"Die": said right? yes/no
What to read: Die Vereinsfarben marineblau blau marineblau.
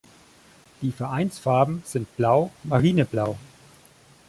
yes